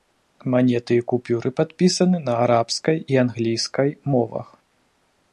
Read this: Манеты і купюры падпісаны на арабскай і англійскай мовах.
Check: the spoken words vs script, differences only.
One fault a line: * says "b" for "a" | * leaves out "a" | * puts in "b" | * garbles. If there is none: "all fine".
all fine